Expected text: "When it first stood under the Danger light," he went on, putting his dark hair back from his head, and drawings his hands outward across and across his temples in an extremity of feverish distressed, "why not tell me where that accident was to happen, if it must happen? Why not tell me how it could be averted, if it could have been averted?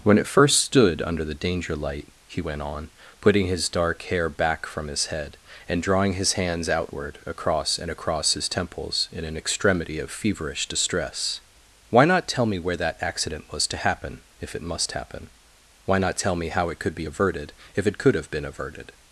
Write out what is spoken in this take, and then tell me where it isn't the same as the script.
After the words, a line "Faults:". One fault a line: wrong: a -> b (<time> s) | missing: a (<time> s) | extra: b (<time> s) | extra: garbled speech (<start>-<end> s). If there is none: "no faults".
"When it first stood under the Danger light," he went on, putting his dark hair back from his head, and drawing his hands outward across and across his temples in an extremity of feverish distress, "why not tell me where that accident was to happen, if it must happen? Why not tell me how it could be averted, if it could have been averted?
Faults:
wrong: drawings -> drawing (5.8 s)
wrong: distressed -> distress (10.7 s)